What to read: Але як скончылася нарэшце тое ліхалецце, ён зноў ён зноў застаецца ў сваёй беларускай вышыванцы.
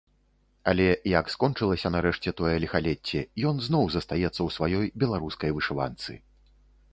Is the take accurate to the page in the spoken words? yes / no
no